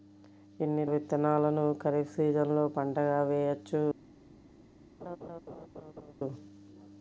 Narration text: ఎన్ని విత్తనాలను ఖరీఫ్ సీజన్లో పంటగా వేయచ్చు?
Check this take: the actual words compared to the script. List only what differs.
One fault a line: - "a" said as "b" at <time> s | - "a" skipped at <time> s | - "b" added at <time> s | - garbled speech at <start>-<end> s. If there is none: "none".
none